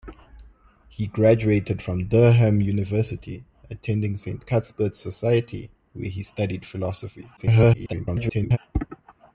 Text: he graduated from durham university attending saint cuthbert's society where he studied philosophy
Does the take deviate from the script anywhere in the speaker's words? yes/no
yes